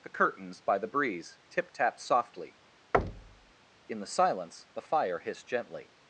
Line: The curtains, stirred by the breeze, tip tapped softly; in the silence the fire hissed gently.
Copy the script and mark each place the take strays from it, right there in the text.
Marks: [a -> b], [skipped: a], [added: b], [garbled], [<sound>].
The curtains, [skipped: stirred] by the breeze, tip tapped softly; [thud] in the silence the fire hissed gently.